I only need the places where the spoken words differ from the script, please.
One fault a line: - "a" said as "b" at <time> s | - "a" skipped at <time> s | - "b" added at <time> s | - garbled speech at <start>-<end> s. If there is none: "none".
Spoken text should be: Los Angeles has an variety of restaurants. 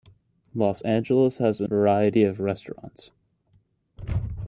none